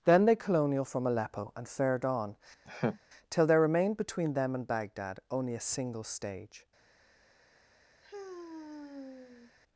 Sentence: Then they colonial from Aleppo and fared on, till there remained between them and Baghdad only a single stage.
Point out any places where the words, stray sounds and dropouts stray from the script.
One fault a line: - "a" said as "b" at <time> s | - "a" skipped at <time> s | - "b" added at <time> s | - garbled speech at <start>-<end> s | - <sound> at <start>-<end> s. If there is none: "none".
- laugh at 2.7-3.0 s
- sigh at 8.0-9.5 s